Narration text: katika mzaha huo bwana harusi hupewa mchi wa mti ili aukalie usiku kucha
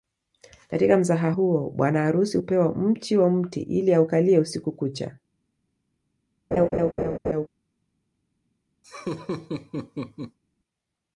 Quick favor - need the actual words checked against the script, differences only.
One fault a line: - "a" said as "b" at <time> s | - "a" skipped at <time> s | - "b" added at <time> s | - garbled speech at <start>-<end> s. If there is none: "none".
none